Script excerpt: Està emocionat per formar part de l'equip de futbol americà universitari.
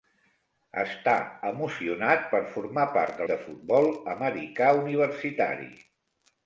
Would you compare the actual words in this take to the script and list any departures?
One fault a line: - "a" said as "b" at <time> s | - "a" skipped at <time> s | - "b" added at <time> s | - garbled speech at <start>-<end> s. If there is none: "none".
- "l'equip" skipped at 3.3 s